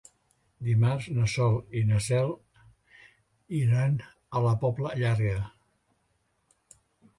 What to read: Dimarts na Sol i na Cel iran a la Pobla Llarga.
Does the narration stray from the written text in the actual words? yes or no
no